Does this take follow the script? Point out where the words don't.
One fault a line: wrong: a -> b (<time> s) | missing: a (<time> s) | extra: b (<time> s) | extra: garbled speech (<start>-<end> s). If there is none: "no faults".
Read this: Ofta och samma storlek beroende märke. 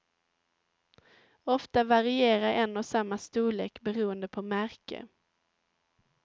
extra: varierar en (1.8 s)
extra: på (4.3 s)